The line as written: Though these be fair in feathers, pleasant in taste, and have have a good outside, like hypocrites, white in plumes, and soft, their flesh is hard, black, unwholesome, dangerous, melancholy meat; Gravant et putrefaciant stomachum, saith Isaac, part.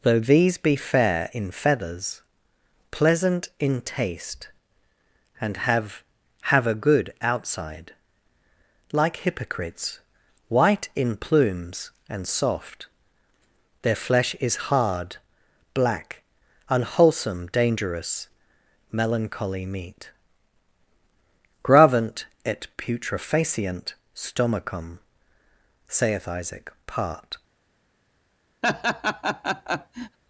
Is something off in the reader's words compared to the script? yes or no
no